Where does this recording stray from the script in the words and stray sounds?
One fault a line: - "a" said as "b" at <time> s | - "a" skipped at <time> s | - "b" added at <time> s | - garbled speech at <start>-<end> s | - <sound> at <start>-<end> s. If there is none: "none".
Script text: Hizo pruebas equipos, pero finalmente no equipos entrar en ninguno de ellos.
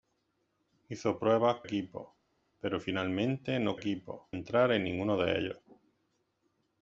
none